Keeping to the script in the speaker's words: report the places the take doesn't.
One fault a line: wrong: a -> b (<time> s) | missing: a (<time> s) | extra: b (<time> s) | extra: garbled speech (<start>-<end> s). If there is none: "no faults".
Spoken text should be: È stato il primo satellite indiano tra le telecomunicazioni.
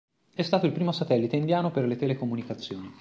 wrong: tra -> per (1.7 s)